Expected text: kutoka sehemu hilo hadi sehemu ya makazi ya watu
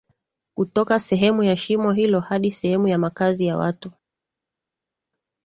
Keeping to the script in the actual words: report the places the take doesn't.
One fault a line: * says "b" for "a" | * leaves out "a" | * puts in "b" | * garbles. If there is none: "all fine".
* puts in "ya shimo"